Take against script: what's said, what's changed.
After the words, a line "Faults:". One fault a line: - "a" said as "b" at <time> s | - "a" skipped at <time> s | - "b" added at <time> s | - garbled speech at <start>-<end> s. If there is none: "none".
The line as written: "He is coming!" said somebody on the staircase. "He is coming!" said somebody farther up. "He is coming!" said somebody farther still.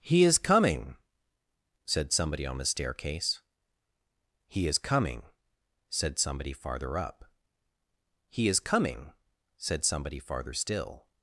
"He is coming!" said somebody on the staircase. "He is coming!" said somebody farther up. "He is coming!" said somebody farther still.
Faults:
none